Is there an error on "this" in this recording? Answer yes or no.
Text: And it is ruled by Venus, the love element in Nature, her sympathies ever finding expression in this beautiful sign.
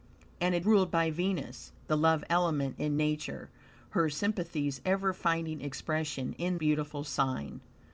yes